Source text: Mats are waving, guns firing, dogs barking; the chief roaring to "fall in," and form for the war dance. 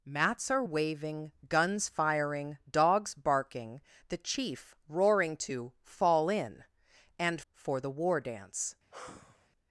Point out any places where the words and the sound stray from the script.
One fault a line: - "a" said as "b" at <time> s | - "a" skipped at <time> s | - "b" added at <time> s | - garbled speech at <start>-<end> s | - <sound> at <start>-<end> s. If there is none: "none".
- "form" skipped at 7.4 s
- sigh at 8.9-9.5 s